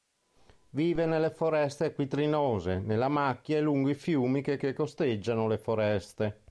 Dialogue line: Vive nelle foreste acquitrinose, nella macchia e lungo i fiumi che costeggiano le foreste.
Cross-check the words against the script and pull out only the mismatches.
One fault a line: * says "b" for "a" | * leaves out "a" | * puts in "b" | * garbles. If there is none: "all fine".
* puts in "che"